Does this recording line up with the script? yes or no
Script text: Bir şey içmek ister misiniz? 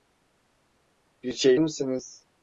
no